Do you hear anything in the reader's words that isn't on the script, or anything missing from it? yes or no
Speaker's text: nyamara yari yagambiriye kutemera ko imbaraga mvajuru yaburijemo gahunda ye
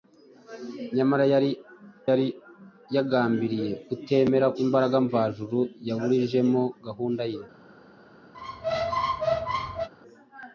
yes